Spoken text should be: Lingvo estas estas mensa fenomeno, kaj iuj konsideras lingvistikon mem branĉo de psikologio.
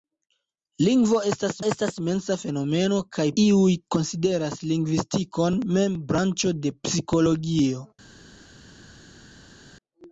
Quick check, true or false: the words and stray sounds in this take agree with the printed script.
true